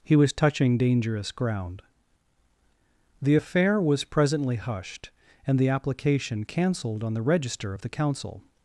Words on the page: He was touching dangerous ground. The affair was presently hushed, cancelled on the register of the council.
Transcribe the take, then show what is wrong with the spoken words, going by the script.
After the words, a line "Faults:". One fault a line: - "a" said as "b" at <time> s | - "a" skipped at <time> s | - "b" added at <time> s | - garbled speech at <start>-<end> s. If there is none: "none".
He was touching dangerous ground. The affair was presently hushed, and the application cancelled on the register of the council.
Faults:
- "and the application" added at 5.5 s